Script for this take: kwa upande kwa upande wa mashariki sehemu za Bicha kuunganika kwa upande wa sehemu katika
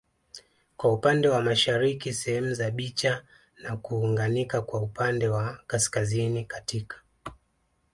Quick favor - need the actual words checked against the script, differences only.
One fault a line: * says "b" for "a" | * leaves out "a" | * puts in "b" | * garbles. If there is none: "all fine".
* leaves out "kwa upande"
* puts in "na"
* says "kaskazini" for "sehemu"